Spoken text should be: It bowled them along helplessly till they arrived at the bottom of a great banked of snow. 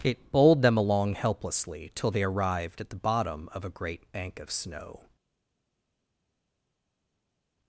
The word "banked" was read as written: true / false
false